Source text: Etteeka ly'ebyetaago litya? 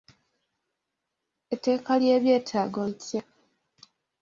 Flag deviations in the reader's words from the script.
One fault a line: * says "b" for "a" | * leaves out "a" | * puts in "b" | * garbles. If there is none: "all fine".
all fine